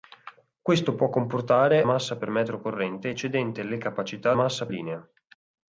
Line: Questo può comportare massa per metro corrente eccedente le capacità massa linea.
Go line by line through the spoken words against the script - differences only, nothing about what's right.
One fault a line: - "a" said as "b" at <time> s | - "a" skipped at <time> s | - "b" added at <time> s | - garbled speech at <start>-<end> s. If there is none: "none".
none